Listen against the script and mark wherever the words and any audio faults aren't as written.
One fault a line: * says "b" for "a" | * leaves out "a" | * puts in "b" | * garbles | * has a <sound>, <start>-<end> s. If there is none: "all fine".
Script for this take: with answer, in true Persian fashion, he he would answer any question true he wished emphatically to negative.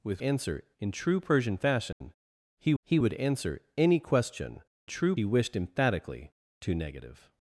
* has a dropout, 1.9-2.0 s